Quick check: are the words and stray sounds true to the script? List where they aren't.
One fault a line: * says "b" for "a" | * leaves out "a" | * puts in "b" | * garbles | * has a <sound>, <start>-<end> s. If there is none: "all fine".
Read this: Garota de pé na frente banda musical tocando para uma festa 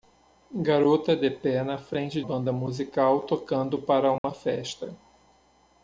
* has a dropout, 4.2-4.2 s